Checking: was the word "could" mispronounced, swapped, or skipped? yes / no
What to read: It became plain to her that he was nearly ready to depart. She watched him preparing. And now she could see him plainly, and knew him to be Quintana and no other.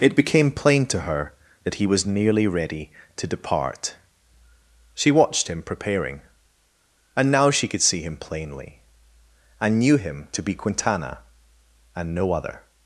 no